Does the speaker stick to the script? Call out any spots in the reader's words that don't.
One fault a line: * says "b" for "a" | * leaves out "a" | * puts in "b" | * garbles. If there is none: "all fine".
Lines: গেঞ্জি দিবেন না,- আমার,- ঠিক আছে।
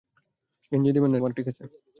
all fine